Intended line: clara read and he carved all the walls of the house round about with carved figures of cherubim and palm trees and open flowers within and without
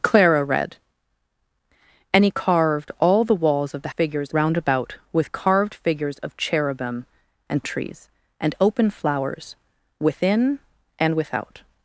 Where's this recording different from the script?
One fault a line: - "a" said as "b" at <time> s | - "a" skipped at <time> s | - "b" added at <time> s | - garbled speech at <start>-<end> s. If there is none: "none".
- "house" said as "figures" at 3.9 s
- "palm" skipped at 7.6 s